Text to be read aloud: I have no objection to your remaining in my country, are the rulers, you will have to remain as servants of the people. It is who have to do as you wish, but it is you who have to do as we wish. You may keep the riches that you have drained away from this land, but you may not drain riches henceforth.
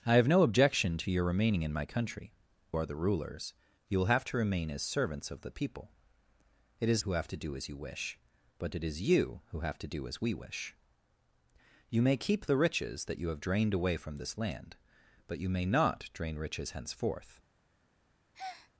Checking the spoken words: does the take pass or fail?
pass